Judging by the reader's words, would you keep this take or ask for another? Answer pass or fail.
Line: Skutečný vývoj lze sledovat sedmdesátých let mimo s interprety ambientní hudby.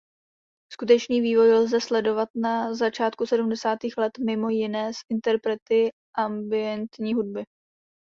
fail